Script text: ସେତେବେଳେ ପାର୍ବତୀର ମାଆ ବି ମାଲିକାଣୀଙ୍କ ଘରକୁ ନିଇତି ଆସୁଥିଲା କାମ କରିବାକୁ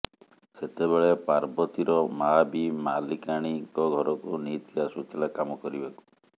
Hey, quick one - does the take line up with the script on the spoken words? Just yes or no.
yes